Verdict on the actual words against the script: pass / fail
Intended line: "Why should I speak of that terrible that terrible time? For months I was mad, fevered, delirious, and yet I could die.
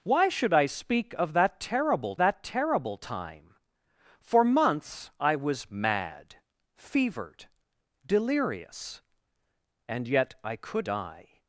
pass